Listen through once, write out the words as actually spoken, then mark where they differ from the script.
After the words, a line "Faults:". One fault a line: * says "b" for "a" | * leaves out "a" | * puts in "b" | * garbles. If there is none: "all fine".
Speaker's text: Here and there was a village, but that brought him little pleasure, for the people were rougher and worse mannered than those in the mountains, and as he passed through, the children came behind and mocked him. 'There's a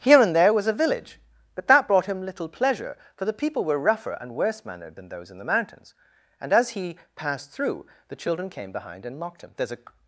Here and there was a village, but that brought him little pleasure, for the people were rougher and worse mannered than those in the mountains, and as he passed through, the children came behind and mocked him. 'There's a
Faults:
all fine